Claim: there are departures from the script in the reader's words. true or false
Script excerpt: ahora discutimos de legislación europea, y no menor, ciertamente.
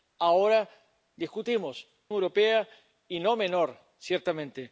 true